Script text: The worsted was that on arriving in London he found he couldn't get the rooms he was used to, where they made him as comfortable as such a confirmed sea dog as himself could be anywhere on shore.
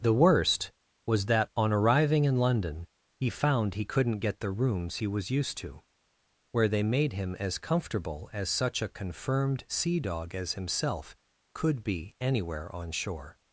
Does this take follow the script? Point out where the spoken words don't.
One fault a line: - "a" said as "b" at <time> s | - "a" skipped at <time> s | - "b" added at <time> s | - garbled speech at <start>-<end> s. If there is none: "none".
- "worsted" said as "worst" at 0.1 s